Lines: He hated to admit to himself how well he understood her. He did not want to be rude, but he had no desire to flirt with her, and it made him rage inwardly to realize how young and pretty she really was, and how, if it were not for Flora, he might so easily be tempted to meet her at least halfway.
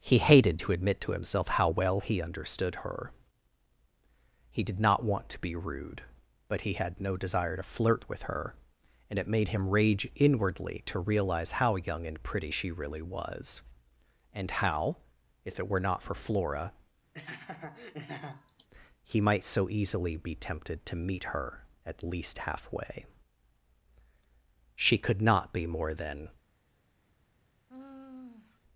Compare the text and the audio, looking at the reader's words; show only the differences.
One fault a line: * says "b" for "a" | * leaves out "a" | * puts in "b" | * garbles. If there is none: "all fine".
* puts in "She could not be more than"